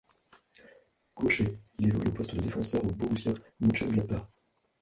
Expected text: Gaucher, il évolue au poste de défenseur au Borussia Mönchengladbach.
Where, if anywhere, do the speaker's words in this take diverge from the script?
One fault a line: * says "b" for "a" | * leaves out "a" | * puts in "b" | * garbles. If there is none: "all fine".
all fine